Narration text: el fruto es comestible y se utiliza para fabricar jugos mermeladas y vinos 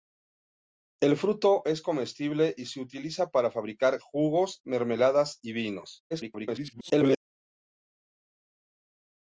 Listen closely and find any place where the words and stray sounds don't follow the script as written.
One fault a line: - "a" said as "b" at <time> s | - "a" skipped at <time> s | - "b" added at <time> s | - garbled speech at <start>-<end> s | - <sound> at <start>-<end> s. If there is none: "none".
- garbled speech at 6.1-7.2 s